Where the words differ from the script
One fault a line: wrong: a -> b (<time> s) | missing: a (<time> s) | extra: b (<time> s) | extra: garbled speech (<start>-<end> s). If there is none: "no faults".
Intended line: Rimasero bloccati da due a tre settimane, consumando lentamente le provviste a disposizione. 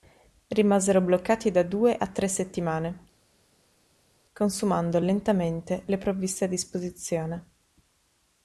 no faults